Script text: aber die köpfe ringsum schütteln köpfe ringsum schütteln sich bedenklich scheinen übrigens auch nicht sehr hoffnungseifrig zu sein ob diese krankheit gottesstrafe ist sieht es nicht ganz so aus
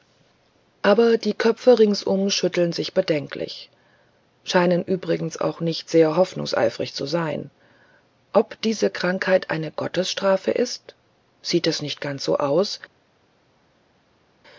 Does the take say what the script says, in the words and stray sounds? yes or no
no